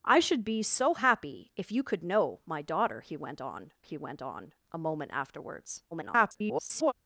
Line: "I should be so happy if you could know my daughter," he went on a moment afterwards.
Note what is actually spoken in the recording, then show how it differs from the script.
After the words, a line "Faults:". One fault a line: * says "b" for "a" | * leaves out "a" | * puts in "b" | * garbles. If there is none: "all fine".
"I should be so happy if you could know my daughter," he went on he went on a moment afterwards. [garbled]
Faults:
* puts in "he went on"
* garbles